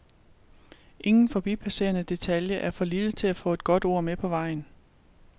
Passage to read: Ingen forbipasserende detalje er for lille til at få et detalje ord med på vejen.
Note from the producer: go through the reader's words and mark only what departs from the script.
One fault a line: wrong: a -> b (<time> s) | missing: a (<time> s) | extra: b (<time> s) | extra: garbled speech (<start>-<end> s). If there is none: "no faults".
wrong: detalje -> godt (3.6 s)